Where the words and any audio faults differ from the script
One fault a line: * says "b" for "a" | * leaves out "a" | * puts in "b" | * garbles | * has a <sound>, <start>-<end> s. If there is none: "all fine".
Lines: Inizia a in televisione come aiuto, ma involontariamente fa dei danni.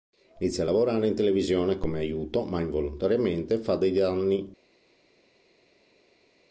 * puts in "lavorare"